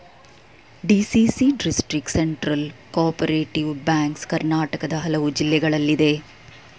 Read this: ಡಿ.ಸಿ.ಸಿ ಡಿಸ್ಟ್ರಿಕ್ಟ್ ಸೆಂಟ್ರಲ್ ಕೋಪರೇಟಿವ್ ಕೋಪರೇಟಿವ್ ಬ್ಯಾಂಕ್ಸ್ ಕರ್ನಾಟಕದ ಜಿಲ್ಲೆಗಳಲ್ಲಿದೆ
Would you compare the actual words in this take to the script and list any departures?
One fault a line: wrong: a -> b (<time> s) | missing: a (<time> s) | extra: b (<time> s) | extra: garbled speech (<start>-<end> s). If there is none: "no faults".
missing: ಕೋಪರೇಟಿವ್ (3.7 s)
extra: ಹಲವು (5.0 s)